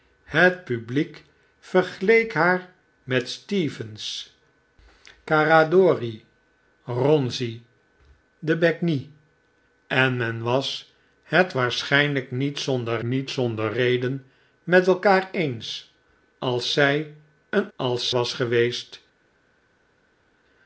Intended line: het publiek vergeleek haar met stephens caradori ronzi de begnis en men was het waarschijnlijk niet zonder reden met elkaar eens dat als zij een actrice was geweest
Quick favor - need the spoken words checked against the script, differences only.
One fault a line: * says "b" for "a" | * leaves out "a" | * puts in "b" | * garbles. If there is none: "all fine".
* puts in "niet zonder"
* leaves out "dat"
* says "als" for "actrice"